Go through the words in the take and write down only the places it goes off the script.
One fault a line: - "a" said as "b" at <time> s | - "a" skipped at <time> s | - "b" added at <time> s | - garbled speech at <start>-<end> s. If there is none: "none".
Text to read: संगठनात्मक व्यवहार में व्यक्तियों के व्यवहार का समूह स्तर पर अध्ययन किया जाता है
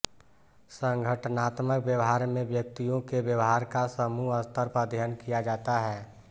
none